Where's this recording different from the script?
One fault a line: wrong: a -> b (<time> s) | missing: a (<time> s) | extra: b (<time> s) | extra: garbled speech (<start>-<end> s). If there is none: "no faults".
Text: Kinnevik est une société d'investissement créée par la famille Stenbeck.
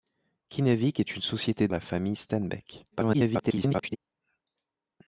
missing: d'investissement créée par (1.7 s)
extra: garbled speech (2.9-4.0 s)